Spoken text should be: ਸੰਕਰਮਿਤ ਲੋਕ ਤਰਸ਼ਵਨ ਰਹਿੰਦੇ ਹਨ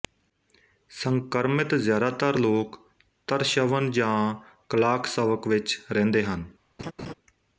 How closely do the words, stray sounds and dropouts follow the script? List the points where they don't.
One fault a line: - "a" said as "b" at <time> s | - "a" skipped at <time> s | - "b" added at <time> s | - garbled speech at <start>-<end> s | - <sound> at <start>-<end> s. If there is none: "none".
- "ਜ਼ਿਆਦਾਤਰ" added at 1.8 s
- "ਜਾਂ ਕਲਾਕਸਵਕ ਵਿੱਚ" added at 3.9 s
- laugh at 6.8-7.1 s